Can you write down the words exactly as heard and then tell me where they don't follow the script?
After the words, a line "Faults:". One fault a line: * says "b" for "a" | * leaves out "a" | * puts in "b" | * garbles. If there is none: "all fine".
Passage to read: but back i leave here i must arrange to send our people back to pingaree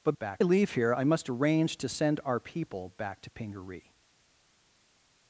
but back i leave here i must arrange to send our people back to pingaree
Faults:
all fine